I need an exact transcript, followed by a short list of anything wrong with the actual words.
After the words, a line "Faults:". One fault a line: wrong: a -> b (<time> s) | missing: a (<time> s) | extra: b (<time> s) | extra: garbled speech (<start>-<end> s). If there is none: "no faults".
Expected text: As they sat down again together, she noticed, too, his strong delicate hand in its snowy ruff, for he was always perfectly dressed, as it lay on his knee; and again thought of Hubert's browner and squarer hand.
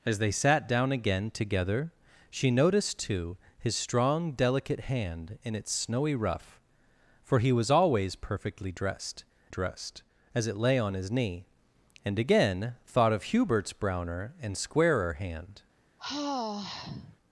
As they sat down again together, she noticed, too, his strong delicate hand in its snowy ruff, for he was always perfectly dressed dressed, as it lay on his knee; and again thought of Hubert's browner and squarer hand.
Faults:
extra: dressed (9.5 s)